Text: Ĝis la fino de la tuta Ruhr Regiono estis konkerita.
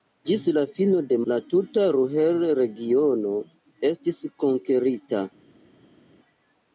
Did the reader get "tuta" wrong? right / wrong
right